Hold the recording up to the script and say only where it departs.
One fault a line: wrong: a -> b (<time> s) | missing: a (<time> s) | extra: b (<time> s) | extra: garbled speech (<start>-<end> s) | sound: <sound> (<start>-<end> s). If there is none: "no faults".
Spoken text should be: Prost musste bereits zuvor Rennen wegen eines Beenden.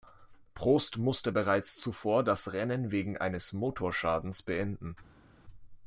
extra: das (2.2 s)
extra: Motorschadens (3.5 s)